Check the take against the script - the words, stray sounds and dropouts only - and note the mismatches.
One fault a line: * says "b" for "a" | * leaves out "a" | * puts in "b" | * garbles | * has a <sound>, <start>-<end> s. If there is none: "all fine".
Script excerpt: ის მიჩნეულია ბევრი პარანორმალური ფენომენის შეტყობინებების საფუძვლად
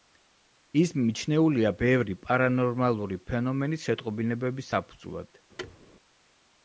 * has a thud, 5.6-5.8 s